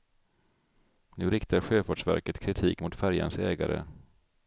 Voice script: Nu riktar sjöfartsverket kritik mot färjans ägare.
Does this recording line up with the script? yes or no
yes